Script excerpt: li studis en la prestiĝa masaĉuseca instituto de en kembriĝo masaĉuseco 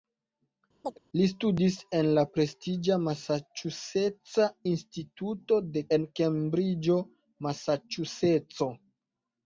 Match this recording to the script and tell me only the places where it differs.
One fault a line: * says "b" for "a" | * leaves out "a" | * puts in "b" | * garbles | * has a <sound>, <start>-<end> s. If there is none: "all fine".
* has a chirp, 0.8-1.0 s